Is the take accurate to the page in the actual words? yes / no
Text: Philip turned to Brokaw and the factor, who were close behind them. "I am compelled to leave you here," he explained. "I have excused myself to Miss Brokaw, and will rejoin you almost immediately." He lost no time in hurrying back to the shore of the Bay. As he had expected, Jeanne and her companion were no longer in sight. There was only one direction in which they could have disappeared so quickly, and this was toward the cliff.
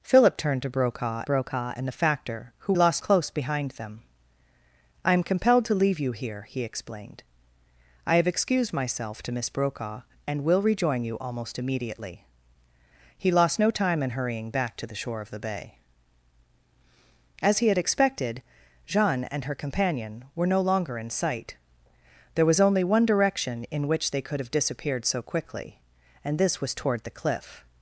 no